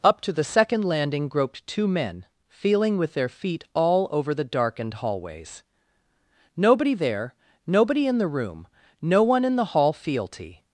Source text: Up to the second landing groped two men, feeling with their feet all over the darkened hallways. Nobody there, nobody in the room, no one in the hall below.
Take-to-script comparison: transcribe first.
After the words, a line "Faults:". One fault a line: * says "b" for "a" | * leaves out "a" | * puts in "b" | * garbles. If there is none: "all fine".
Up to the second landing groped two men, feeling with their feet all over the darkened hallways. Nobody there, nobody in the room, no one in the hall fealty.
Faults:
* says "fealty" for "below"